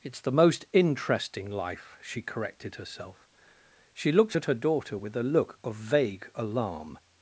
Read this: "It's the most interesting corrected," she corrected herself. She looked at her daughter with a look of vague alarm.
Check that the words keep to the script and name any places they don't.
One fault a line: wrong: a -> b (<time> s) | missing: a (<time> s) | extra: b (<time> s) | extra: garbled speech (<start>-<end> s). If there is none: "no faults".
wrong: corrected -> life (1.5 s)